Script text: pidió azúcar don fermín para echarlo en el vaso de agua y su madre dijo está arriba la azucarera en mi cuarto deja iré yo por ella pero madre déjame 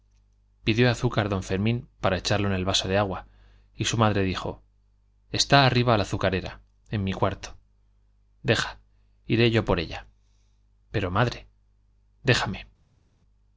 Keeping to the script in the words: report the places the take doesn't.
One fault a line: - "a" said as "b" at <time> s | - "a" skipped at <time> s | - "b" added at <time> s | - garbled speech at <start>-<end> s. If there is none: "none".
none